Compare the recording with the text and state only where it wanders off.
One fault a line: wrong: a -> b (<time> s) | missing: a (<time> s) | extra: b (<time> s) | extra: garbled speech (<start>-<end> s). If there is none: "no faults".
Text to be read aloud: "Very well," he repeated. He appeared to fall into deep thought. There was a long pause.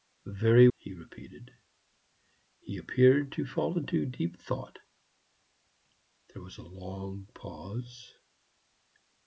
missing: well (0.7 s)